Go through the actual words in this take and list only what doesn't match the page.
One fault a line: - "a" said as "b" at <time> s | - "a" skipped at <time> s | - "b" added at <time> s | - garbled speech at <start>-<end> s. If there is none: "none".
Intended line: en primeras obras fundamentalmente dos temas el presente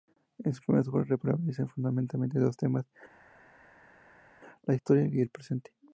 - "sus" added at 0.5 s
- "prevalecen" added at 1.2 s
- "la historia y" added at 4.6 s